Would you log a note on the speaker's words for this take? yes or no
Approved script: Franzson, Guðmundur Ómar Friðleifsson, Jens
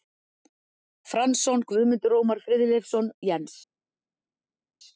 no